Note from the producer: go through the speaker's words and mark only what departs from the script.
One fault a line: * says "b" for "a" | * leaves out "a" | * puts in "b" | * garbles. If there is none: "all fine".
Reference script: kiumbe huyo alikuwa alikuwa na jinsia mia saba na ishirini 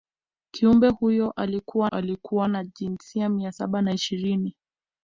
all fine